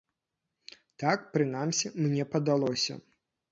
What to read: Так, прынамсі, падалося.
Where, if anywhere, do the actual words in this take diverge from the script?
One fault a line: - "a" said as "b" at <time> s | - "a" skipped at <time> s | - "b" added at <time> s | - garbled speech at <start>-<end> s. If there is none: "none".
- "мне" added at 2.0 s